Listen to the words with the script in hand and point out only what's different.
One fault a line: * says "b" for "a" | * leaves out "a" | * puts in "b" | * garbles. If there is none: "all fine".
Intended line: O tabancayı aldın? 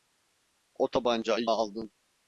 all fine